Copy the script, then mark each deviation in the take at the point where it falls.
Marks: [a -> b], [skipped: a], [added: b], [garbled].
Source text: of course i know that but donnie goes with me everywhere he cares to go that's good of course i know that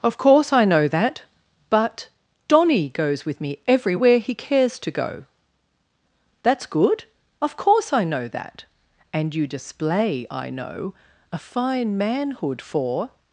of course i know that but donnie goes with me everywhere he cares to go that's good of course i know that [added: and you display i know a fine manhood for]